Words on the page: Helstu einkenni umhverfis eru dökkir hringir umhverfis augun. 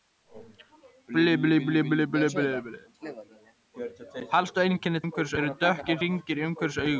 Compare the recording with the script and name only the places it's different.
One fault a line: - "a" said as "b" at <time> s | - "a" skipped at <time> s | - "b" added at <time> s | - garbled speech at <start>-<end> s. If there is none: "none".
none